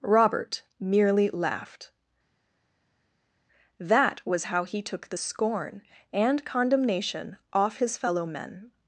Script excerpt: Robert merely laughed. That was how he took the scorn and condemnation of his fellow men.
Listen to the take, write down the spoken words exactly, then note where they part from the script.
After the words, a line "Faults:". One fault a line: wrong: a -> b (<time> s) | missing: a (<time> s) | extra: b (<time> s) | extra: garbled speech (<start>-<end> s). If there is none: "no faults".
Robert merely laughed. That was how he took the scorn and condemnation off his fellow men.
Faults:
wrong: of -> off (7.5 s)